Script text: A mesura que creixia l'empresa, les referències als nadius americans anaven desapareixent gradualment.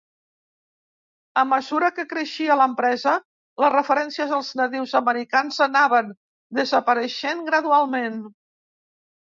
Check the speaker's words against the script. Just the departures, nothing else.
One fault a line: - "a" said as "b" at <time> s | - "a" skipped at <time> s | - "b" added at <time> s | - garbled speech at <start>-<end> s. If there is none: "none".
none